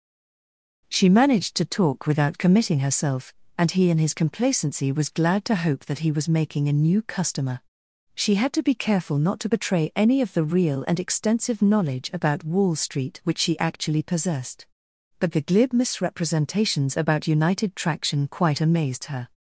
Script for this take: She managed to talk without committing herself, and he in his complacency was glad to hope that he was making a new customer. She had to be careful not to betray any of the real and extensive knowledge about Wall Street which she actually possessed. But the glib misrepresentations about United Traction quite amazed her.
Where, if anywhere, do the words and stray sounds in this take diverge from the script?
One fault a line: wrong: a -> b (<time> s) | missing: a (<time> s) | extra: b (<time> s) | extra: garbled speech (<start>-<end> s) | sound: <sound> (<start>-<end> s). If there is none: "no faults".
no faults